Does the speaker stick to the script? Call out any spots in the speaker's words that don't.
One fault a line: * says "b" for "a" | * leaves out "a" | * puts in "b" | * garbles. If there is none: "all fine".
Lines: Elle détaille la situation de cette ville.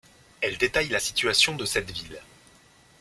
all fine